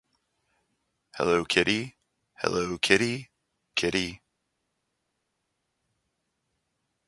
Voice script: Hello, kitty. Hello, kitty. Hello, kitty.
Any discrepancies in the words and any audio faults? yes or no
yes